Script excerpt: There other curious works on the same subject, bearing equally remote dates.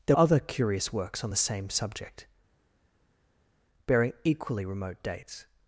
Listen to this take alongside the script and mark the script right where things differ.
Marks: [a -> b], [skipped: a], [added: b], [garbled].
There other curious works on the same subject, bearing equally remote dates.